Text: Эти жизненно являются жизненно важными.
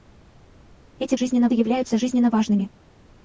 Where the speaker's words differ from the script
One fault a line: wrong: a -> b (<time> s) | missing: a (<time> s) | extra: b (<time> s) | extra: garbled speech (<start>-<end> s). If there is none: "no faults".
no faults